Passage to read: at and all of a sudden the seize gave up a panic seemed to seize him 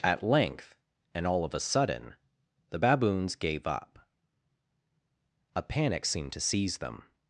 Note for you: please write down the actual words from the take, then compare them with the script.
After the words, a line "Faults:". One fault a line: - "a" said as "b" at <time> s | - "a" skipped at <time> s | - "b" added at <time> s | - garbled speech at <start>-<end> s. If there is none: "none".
at length and all of a sudden the baboons gave up a panic seemed to seize them
Faults:
- "length" added at 0.2 s
- "seize" said as "baboons" at 2.8 s
- "him" said as "them" at 6.8 s